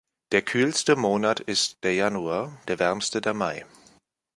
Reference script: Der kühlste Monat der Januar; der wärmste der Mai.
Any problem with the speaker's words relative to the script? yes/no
yes